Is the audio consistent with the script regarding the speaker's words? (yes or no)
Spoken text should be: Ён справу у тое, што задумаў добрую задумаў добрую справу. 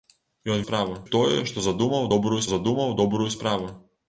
yes